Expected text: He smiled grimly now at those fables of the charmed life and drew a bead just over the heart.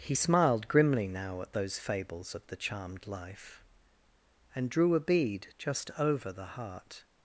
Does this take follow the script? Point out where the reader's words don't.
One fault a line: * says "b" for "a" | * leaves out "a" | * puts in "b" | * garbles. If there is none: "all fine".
all fine